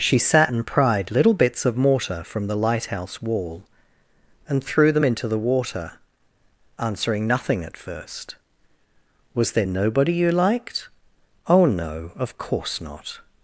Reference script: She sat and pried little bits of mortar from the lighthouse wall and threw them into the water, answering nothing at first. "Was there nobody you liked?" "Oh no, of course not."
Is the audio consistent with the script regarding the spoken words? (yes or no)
yes